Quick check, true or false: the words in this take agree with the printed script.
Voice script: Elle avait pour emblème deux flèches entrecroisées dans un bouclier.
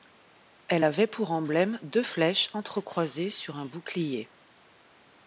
false